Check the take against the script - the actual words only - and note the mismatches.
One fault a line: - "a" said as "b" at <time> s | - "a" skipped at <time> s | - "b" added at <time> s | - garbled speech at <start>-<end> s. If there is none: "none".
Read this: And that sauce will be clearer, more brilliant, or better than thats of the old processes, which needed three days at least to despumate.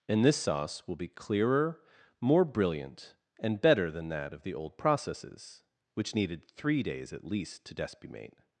- "that" said as "this" at 0.2 s
- "or" said as "and" at 3.4 s
- "thats" said as "that" at 4.1 s